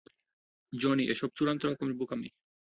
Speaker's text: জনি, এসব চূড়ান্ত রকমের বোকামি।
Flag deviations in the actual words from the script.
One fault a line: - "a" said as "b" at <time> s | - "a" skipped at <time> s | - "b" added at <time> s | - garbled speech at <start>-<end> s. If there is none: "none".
none